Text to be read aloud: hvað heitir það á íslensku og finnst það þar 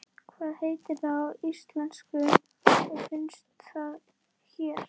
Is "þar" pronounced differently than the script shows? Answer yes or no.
yes